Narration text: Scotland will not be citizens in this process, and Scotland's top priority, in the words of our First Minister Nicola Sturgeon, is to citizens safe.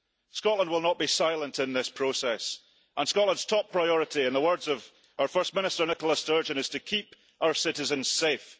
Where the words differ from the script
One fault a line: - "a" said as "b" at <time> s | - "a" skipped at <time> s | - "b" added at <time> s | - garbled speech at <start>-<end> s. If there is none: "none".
- "citizens" said as "silent" at 1.1 s
- "keep our" added at 6.8 s